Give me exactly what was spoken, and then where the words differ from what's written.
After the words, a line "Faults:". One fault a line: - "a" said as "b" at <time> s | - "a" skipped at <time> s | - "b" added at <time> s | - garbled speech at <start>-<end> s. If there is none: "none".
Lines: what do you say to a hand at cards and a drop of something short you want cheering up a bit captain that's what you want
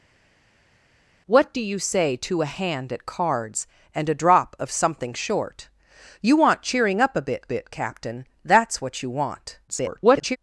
what do you say to a hand at cards and a drop of something short you want cheering up a bit bit captain that's what you want [garbled]
Faults:
- "bit" added at 7.4 s
- garbled speech at 9.7-10.4 s